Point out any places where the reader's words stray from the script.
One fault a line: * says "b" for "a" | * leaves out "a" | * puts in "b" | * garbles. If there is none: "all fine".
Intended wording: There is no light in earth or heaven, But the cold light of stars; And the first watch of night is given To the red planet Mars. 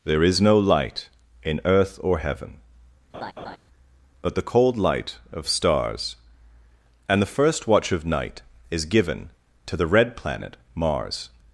all fine